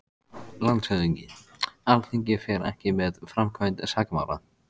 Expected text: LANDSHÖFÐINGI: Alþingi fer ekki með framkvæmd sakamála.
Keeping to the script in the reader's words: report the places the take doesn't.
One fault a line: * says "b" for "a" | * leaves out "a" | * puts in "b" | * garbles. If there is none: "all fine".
all fine